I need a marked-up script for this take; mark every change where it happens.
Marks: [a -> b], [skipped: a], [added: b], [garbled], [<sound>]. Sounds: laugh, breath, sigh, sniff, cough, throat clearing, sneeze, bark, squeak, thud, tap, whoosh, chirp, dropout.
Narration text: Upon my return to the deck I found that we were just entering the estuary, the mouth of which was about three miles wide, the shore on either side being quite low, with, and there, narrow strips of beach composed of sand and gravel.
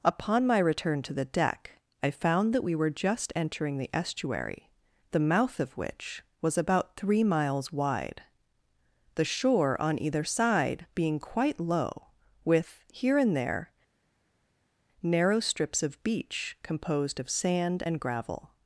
Upon my return to the deck I found that we were just entering the estuary, the mouth of which was about three miles wide, the shore on either side being quite low, with, [added: here] and there, narrow strips of beach composed of sand and gravel.